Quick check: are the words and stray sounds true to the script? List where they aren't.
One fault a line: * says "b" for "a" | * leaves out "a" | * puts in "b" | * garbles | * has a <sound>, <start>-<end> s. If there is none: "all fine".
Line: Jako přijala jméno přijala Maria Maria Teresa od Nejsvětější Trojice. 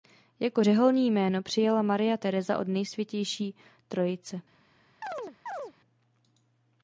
* says "řeholní" for "přijala"
* leaves out "Maria"
* has a chirp, 5.0-5.7 s